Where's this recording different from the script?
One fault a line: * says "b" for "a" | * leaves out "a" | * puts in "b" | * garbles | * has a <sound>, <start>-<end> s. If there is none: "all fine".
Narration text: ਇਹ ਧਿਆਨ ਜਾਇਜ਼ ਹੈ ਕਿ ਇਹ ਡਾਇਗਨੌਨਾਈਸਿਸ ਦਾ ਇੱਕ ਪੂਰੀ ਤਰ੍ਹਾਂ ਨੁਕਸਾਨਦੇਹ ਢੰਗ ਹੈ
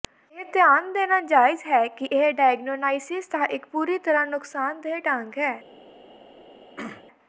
* puts in "ਦੇਣਾ"
* has a throat clearing, 6.8-7.0 s